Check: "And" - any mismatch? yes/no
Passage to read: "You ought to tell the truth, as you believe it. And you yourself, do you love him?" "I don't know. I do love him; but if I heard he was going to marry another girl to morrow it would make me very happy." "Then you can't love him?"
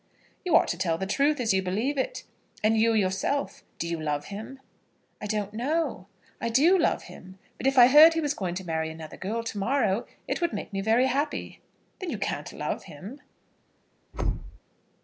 no